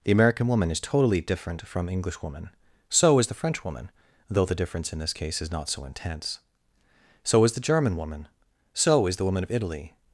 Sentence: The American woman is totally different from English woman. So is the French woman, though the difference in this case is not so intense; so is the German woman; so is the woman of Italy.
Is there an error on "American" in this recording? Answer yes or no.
no